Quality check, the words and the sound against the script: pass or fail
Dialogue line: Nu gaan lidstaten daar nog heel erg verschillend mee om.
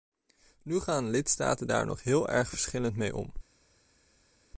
pass